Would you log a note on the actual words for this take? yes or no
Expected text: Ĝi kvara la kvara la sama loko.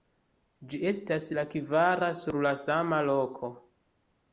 yes